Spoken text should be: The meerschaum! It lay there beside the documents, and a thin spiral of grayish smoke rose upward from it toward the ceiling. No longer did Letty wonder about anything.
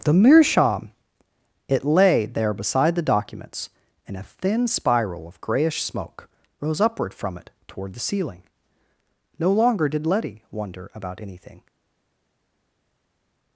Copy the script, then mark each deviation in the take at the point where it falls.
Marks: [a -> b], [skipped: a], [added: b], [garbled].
The meerschaum! It lay there beside the documents, and a thin spiral of grayish smoke rose upward from it toward the ceiling. No longer did Letty wonder about anything.